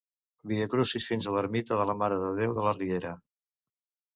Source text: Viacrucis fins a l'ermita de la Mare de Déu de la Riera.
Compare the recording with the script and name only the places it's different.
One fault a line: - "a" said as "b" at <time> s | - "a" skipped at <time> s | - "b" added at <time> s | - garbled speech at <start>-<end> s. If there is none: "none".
none